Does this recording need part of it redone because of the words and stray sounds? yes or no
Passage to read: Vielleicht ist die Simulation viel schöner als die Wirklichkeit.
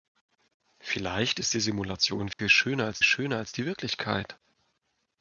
yes